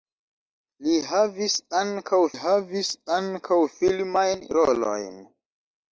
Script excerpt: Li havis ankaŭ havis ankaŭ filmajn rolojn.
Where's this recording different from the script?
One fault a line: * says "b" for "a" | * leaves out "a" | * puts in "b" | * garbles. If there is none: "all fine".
all fine